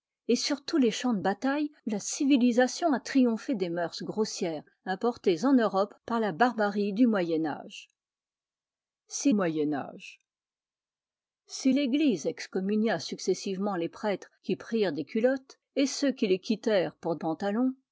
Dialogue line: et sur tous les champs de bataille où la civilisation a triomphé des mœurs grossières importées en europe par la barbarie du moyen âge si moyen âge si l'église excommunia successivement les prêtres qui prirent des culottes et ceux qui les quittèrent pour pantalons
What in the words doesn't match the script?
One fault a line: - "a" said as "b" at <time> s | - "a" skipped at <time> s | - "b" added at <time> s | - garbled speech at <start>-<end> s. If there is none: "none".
none